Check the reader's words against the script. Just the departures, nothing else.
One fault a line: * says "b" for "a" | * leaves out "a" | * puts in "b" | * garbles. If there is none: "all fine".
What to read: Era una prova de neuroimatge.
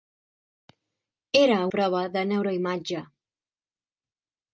* leaves out "una"